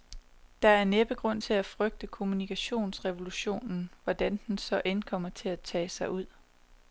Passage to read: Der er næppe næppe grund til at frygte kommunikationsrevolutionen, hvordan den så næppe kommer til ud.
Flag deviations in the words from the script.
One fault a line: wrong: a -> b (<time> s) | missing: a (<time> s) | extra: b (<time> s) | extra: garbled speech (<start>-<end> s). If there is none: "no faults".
missing: næppe (1.1 s)
wrong: næppe -> end (4.8 s)
extra: at tage sig (5.5 s)